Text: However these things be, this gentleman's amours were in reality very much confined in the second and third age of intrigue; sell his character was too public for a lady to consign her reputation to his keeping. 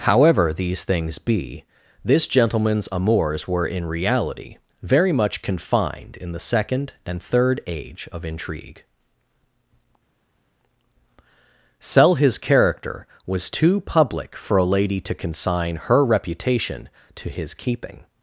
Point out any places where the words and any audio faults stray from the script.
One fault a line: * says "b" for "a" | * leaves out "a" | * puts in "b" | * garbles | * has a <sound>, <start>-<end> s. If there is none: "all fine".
all fine